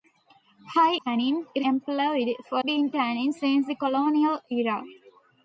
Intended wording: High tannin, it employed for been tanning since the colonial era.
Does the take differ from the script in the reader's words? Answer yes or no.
no